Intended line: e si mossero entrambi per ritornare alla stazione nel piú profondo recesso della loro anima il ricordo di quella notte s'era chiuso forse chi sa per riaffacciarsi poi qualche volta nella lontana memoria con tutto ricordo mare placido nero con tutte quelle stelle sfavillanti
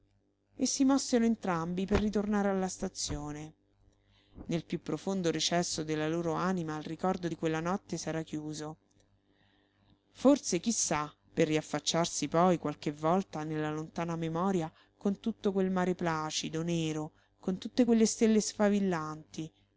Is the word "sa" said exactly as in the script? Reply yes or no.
yes